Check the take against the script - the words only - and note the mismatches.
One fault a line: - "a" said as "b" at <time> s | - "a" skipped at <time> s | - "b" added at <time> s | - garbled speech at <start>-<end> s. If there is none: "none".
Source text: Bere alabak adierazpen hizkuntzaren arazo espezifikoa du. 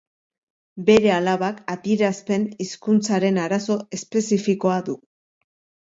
none